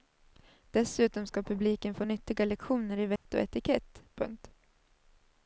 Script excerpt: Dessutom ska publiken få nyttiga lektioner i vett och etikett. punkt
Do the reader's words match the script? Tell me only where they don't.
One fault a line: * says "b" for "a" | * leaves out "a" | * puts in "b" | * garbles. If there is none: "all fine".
all fine